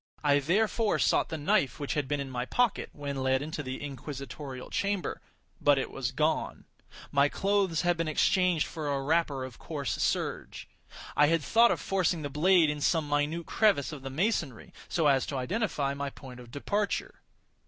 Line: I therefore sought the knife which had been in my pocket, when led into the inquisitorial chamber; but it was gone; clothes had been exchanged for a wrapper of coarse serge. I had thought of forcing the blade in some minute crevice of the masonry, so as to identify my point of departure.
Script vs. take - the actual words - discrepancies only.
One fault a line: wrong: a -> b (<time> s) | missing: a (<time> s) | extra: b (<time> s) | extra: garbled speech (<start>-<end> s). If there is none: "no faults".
extra: my (7.1 s)